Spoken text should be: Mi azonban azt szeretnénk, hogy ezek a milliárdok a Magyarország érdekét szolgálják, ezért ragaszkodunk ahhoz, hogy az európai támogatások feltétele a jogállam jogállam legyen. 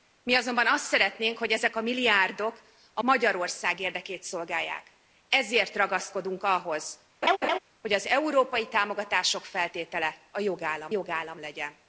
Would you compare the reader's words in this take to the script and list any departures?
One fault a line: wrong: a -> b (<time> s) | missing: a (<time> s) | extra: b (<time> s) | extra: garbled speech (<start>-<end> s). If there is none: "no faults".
no faults